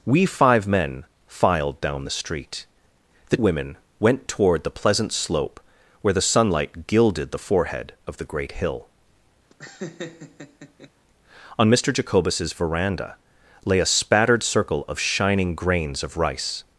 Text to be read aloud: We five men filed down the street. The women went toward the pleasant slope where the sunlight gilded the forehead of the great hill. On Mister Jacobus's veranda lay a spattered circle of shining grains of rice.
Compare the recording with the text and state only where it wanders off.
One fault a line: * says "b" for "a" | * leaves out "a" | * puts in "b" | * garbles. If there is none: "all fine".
all fine